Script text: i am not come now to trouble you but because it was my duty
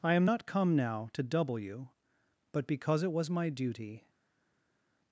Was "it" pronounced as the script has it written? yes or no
yes